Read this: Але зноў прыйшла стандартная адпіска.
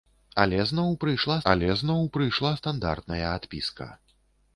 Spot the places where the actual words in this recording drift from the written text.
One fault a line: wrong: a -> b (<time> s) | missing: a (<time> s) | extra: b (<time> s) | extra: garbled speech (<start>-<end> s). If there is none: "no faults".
extra: але зноў прыйшла (1.5 s)